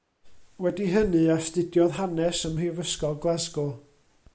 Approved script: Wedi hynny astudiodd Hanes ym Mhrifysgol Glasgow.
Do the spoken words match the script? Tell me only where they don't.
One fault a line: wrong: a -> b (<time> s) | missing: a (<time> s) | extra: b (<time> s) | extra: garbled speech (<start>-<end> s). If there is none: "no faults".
no faults